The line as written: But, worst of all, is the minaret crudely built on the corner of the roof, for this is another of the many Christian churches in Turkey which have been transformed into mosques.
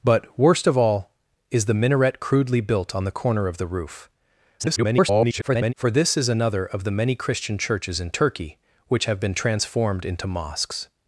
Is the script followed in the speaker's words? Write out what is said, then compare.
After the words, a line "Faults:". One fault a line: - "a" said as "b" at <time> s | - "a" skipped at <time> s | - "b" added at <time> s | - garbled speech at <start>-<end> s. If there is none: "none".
But, worst of all, is the minaret crudely built on the corner of the roof, [garbled] for this is another of the many Christian churches in Turkey which have been transformed into mosques.
Faults:
- garbled speech at 4.6-5.7 s